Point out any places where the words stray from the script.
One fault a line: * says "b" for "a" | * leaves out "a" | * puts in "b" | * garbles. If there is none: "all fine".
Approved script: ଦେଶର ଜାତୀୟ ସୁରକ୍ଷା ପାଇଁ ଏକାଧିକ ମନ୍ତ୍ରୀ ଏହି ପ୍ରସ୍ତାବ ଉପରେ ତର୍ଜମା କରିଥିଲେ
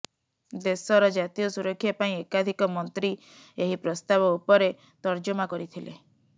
all fine